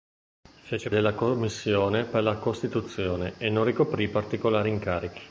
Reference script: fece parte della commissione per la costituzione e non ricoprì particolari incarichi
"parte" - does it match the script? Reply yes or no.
no